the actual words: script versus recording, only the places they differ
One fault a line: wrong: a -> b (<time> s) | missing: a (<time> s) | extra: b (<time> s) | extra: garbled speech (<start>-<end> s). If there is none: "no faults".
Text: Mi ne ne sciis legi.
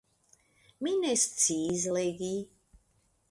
missing: ne (1.1 s)